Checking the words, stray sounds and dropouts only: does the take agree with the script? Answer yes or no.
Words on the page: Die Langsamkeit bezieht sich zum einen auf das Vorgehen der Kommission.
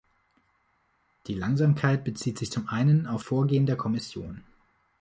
no